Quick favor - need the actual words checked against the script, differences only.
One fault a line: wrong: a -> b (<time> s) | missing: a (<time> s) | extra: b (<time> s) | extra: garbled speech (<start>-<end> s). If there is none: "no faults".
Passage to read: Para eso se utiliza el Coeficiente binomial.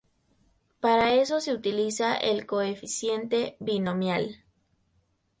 no faults